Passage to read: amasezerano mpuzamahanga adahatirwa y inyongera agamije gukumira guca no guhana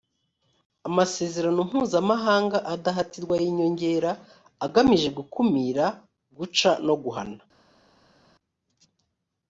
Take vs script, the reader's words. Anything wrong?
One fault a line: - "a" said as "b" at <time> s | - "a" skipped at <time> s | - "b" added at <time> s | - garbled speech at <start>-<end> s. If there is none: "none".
none